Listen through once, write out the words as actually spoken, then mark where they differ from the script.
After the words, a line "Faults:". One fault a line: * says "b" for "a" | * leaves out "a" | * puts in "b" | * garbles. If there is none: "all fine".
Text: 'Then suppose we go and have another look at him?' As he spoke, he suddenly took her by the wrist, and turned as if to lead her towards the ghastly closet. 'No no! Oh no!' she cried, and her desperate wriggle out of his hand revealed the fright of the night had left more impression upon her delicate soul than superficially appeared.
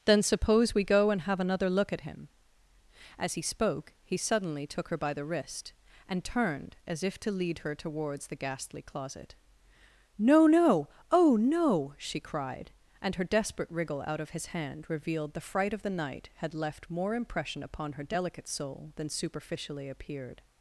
'Then suppose we go and have another look at him?' As he spoke, he suddenly took her by the wrist, and turned as if to lead her towards the ghastly closet. 'No no! Oh no!' she cried, and her desperate wriggle out of his hand revealed the fright of the night had left more impression upon her delicate soul than superficially appeared.
Faults:
all fine